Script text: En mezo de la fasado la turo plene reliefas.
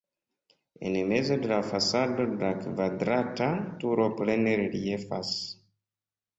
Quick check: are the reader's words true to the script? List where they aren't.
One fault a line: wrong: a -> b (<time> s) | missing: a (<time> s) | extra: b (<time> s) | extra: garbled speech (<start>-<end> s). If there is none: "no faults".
extra: kvadrata (2.6 s)